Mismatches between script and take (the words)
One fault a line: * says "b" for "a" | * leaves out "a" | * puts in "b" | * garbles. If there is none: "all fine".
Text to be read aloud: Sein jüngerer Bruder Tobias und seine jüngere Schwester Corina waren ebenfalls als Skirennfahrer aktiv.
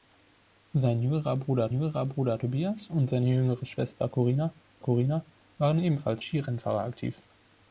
* puts in "jüngerer Bruder"
* puts in "Corina"
* leaves out "als"